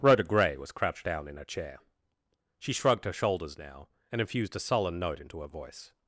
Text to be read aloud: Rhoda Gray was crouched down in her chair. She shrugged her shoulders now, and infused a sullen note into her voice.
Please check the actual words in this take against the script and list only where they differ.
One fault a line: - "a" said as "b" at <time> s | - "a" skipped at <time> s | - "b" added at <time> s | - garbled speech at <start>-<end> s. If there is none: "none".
none